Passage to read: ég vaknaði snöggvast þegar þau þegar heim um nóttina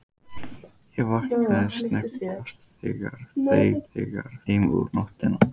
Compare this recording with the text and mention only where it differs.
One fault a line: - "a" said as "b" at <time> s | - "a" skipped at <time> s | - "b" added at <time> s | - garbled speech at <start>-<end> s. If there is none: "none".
none